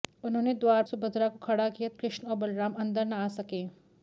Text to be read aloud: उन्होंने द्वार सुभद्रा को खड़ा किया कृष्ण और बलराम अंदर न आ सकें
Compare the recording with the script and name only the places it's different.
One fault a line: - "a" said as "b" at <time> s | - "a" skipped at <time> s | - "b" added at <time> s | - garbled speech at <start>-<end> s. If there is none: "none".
none